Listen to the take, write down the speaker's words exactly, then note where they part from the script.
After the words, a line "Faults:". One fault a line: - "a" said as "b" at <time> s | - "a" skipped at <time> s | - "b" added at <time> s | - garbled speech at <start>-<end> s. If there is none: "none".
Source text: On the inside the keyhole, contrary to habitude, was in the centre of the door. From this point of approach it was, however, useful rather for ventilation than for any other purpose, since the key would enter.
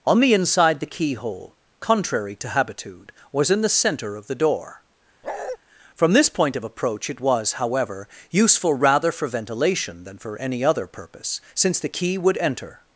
On the inside the keyhole, contrary to habitude, was in the centre of the door. From this point of approach it was, however, useful rather for ventilation than for any other purpose, since the key would enter.
Faults:
none